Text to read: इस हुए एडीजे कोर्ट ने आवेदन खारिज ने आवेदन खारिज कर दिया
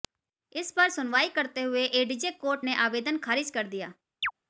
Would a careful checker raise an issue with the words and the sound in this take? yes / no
yes